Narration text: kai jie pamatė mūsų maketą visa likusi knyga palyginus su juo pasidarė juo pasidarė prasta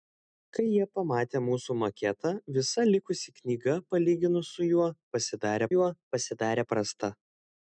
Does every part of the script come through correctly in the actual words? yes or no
yes